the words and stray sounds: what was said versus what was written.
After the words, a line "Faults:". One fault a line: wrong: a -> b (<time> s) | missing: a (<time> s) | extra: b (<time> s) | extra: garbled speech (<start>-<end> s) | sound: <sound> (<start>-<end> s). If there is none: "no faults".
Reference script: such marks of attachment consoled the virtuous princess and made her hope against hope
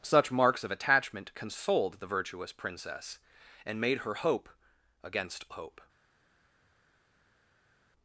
such marks of attachment consoled the virtuous princess and made her hope against hope
Faults:
no faults